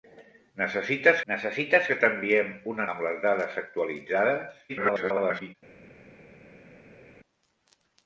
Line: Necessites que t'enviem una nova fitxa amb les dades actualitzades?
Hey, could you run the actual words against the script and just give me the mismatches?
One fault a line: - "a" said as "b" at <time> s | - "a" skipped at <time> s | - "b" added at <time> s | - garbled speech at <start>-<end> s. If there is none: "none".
- "necessites" added at 1.3 s
- "nova fitxa" skipped at 2.9 s
- garbled speech at 4.7-5.6 s